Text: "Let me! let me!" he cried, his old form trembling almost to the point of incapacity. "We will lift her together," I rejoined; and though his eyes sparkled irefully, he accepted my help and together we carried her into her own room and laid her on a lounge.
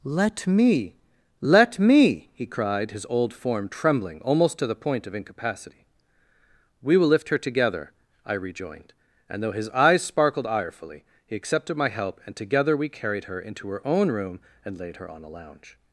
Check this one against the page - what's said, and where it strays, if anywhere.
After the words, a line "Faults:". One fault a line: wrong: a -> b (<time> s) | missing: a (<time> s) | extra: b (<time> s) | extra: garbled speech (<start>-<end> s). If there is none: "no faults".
"Let me! let me!" he cried, his old form trembling almost to the point of incapacity. "We will lift her together," I rejoined; and though his eyes sparkled irefully, he accepted my help and together we carried her into her own room and laid her on a lounge.
Faults:
no faults